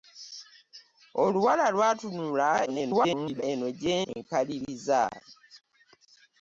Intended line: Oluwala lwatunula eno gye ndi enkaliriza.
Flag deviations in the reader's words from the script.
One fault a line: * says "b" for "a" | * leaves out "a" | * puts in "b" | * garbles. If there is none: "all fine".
* garbles
* leaves out "ndi"